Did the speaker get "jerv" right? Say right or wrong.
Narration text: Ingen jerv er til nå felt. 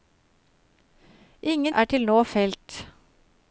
wrong